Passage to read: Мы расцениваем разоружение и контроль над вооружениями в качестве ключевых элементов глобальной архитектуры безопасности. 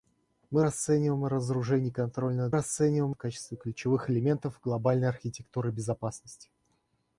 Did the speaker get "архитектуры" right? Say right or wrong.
right